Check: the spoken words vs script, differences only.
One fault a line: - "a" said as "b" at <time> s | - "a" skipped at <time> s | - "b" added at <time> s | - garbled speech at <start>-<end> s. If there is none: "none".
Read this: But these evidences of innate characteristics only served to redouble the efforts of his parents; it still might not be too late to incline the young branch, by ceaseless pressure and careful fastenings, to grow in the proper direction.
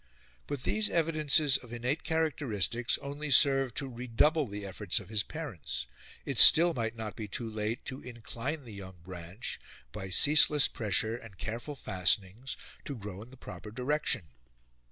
none